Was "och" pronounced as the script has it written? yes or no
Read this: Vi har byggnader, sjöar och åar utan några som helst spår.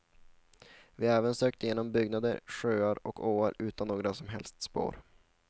yes